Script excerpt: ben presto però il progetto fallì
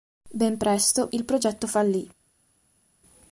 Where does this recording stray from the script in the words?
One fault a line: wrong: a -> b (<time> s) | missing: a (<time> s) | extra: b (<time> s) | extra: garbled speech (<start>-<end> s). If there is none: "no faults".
missing: però (1.1 s)